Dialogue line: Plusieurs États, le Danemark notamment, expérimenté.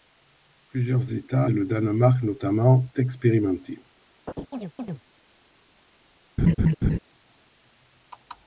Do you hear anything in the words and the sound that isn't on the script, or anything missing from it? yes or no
yes